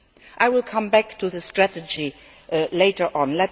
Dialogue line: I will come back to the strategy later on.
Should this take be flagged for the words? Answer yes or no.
no